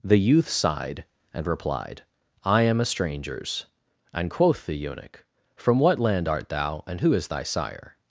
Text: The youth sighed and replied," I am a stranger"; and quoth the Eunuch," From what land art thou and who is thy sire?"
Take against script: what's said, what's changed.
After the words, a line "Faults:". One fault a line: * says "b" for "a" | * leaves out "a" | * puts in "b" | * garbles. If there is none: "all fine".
The youth sighed and replied," I am a strangers"; and quoth the Eunuch," From what land art thou and who is thy sire?"
Faults:
* says "strangers" for "stranger"